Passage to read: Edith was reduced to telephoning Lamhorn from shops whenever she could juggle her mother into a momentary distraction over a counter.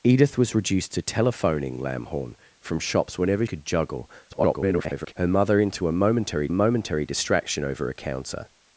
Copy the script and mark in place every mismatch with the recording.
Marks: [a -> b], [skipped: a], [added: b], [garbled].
Edith was reduced to telephoning Lamhorn from shops whenever [skipped: she] could juggle [garbled] her mother into a momentary [added: momentary] distraction over a counter.